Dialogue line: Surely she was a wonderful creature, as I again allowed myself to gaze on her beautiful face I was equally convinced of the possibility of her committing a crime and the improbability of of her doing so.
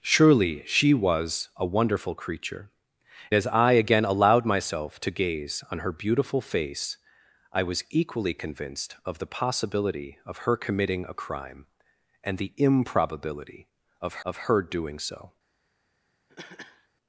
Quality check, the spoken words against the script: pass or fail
pass